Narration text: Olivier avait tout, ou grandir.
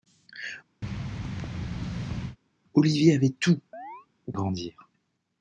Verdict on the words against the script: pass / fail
pass